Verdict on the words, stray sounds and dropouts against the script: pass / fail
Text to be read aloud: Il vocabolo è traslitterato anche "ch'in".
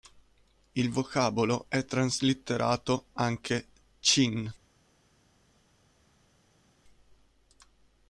pass